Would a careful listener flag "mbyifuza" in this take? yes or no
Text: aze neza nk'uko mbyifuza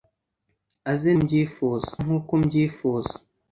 no